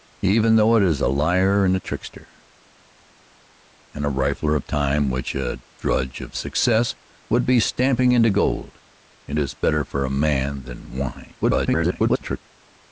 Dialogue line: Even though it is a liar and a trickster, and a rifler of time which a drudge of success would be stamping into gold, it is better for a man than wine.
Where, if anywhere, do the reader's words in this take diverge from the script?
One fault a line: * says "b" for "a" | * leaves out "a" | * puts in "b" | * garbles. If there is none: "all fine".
* garbles